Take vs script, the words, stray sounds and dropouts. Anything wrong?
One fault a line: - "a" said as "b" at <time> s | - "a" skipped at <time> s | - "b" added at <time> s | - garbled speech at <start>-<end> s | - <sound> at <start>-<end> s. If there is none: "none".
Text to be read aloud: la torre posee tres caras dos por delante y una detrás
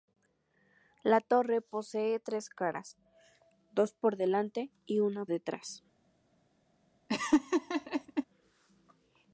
- laugh at 7.1-8.2 s